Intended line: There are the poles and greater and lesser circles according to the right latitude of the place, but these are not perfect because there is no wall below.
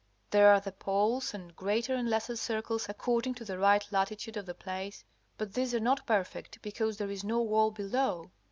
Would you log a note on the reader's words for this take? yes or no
no